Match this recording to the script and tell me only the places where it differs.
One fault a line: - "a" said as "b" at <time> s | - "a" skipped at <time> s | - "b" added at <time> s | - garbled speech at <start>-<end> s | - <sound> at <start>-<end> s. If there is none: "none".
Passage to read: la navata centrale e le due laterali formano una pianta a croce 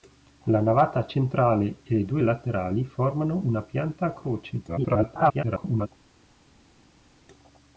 - garbled speech at 4.7-5.9 s